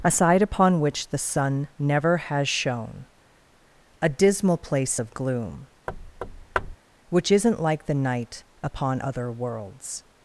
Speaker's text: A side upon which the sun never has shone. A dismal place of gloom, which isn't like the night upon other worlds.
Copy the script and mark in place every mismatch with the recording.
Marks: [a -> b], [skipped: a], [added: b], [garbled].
A side upon which the sun never has shone. A dismal place of gloom, which isn't like the night upon other worlds.